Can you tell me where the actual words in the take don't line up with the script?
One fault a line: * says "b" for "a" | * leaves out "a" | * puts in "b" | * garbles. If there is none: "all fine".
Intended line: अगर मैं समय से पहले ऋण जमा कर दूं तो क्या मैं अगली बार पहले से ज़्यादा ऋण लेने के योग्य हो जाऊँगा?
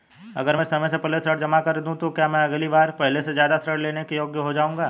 all fine